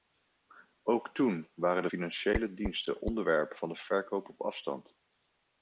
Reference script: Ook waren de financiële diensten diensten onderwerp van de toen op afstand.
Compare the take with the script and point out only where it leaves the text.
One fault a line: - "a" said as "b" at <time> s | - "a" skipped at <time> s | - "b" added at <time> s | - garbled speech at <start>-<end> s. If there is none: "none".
- "toen" added at 1.1 s
- "diensten" skipped at 3.0 s
- "toen" said as "verkoop" at 3.7 s